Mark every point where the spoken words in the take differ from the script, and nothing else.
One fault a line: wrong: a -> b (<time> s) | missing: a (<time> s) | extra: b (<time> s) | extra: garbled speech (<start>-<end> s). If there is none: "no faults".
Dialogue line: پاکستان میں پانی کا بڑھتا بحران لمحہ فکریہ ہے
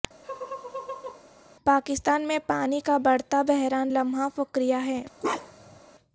no faults